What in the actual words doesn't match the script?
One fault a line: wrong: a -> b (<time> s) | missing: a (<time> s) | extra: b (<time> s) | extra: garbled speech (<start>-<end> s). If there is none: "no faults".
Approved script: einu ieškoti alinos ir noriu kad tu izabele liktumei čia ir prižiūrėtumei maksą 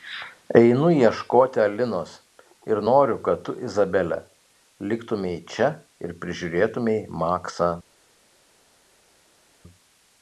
no faults